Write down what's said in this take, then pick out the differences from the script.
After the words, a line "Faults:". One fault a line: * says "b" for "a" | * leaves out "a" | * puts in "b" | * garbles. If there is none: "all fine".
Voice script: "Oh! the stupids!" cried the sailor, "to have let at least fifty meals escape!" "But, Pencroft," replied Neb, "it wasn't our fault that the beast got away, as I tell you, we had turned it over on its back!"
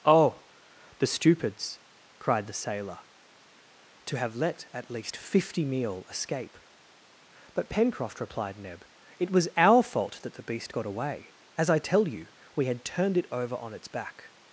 "Oh! the stupids!" cried the sailor, "to have let at least fifty meal escape!" "But, Pencroft," replied Neb, "it was our fault that the beast got away, as I tell you, we had turned it over on its back!"
Faults:
* says "meal" for "meals"
* says "was" for "wasn't"